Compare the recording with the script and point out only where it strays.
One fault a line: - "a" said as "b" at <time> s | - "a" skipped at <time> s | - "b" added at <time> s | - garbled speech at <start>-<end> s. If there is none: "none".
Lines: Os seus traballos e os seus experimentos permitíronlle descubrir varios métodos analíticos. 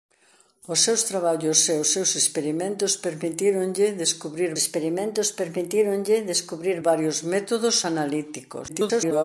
- "experimentos permitíronlle descubrir" added at 4.6 s
- garbled speech at 8.7-9.2 s